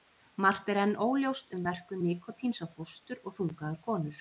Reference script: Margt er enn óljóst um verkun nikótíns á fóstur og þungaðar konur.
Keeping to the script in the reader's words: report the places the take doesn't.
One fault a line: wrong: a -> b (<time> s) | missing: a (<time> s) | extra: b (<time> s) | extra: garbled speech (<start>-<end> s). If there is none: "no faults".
no faults